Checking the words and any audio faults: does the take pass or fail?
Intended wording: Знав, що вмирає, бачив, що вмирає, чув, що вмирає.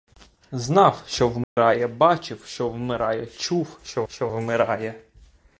fail